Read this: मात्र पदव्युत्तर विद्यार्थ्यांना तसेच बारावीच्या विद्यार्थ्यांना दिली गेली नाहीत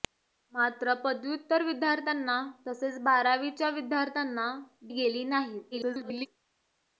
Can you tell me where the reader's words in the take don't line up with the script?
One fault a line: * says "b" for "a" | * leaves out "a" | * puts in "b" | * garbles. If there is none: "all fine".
* leaves out "दिली"
* garbles